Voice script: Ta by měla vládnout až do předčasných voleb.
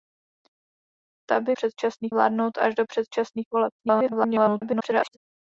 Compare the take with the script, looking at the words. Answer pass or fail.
fail